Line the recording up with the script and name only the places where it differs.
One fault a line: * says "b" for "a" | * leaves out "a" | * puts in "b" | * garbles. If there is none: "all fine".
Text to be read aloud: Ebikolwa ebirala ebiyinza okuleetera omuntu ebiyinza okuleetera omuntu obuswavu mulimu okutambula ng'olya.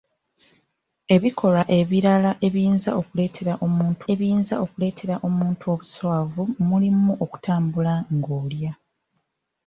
all fine